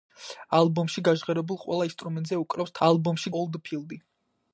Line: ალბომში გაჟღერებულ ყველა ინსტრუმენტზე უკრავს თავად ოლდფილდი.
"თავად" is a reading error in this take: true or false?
true